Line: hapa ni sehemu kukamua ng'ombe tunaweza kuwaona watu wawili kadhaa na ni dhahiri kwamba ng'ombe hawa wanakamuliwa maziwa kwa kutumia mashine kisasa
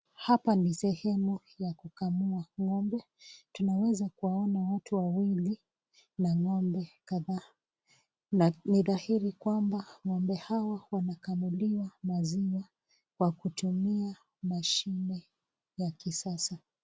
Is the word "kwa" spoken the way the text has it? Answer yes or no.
yes